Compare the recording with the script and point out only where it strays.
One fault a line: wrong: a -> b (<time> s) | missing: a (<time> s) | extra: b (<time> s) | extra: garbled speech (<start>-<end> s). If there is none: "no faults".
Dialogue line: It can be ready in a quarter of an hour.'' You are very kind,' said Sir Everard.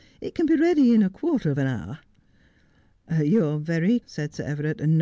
missing: kind (4.0 s)